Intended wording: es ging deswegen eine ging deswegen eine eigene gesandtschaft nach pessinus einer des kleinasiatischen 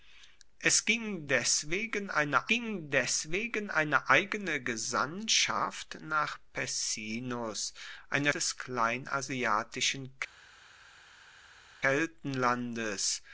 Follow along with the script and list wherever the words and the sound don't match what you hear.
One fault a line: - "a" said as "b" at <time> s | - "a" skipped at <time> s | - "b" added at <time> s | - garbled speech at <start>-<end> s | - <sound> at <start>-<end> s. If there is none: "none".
none